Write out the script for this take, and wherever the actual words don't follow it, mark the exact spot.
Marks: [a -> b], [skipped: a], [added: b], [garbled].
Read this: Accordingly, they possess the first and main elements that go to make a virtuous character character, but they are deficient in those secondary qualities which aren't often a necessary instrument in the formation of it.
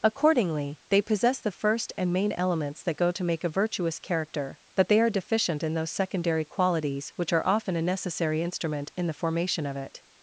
Accordingly, they possess the first and main elements that go to make a virtuous character [skipped: character,] but they are deficient in those secondary qualities which [aren't -> are] often a necessary instrument in the formation of it.